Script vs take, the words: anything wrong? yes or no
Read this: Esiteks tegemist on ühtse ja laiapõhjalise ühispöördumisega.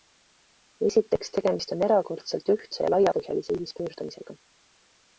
yes